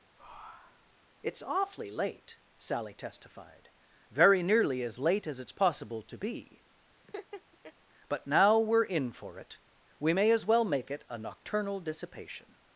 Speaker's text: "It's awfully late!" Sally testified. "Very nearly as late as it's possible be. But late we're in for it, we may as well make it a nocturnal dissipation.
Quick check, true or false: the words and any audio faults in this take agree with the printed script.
false